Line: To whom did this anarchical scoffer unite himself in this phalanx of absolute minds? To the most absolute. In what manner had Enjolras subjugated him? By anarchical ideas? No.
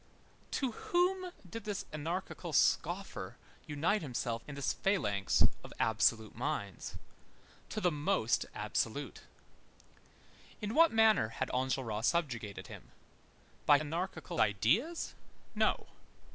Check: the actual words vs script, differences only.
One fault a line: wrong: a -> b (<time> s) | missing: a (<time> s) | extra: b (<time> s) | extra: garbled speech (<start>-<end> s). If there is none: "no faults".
no faults